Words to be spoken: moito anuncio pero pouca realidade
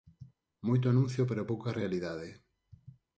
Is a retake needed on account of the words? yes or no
no